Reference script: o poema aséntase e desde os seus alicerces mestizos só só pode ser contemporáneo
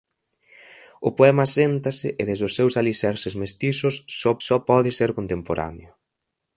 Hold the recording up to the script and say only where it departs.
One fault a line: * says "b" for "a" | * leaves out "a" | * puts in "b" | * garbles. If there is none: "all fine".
all fine